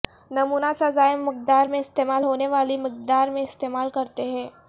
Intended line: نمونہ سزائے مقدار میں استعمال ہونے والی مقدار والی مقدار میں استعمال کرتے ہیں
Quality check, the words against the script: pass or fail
fail